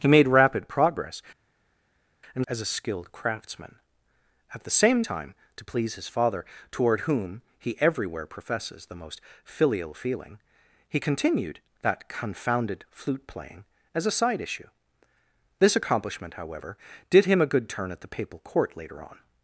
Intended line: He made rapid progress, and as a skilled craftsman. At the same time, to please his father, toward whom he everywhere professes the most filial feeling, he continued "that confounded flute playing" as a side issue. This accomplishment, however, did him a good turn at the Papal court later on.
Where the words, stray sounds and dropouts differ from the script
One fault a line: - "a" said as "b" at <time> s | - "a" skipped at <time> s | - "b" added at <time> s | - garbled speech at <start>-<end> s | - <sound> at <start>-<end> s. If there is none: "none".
none